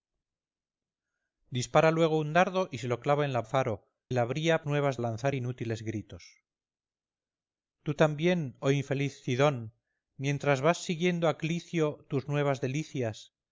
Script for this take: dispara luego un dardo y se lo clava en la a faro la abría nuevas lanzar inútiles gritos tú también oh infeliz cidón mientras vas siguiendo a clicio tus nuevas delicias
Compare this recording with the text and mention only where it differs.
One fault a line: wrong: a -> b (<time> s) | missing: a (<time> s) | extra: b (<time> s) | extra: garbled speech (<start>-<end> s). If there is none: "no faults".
no faults